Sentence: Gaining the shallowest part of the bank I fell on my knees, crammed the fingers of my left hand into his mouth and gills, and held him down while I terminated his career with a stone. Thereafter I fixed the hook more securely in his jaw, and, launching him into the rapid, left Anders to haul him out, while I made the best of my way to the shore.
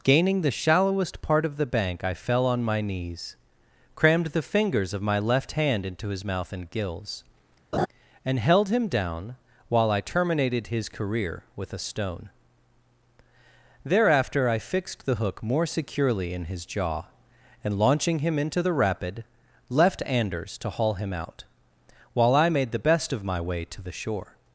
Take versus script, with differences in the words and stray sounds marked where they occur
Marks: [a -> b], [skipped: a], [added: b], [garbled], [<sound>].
Gaining the shallowest part of the bank I fell on my knees, crammed the fingers of my left hand into his mouth and gills, [laugh] and held him down while I terminated his career with a stone. Thereafter I fixed the hook more securely in his jaw, and, launching him into the rapid, left Anders to haul him out, while I made the best of my way to the shore.